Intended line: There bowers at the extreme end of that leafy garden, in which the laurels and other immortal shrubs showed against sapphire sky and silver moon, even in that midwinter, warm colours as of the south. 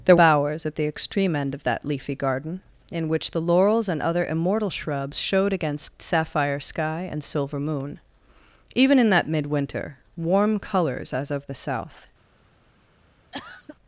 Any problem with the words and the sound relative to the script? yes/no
yes